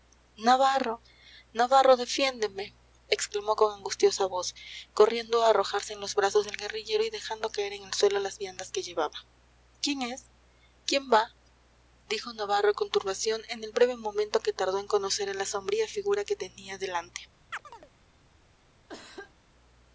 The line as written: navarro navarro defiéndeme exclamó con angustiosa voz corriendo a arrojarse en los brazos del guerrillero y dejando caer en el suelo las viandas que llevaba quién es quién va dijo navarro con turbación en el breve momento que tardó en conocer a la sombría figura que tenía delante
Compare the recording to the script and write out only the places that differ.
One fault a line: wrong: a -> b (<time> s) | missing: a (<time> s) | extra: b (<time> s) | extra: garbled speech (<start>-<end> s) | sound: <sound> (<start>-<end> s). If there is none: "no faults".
sound: chirp (17.5-17.9 s)
sound: cough (18.9-19.3 s)